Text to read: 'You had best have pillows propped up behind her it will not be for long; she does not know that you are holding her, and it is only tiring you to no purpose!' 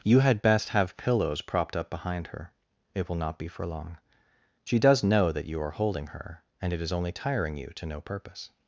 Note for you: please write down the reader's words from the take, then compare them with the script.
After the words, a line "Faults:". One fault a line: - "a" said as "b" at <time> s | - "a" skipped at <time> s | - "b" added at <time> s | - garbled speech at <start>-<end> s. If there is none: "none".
'You had best have pillows propped up behind her it will not be for long; she does know that you are holding her, and it is only tiring you to no purpose!'
Faults:
- "not" skipped at 5.0 s